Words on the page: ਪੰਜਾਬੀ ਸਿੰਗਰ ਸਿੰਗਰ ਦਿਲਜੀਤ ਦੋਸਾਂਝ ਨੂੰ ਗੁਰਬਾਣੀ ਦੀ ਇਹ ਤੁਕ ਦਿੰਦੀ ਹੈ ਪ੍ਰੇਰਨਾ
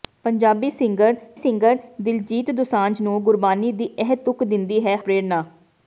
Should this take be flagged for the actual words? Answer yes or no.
no